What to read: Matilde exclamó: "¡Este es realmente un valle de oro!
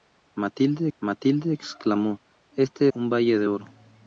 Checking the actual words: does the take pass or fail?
fail